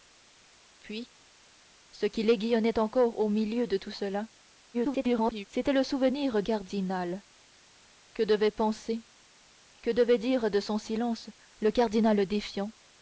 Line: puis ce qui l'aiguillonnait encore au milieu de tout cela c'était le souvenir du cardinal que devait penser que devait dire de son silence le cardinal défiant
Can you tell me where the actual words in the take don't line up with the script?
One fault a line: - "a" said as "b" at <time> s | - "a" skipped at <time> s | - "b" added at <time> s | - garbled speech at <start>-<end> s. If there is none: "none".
- garbled speech at 4.7-5.5 s
- "du" skipped at 6.4 s